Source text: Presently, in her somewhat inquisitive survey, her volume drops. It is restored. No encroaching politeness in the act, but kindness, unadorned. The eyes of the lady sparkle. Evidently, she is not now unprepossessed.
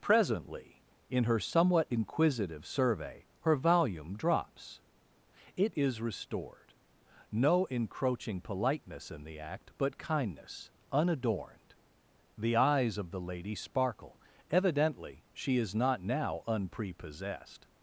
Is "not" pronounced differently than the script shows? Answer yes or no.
no